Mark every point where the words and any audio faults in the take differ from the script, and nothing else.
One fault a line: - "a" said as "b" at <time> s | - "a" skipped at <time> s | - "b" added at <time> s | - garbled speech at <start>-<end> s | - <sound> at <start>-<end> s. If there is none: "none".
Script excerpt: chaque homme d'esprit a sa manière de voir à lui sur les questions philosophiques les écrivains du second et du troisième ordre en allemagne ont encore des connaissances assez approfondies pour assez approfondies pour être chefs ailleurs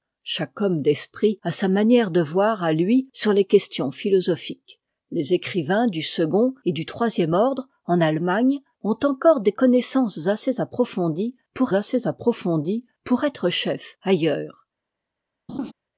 - laugh at 15.5-15.7 s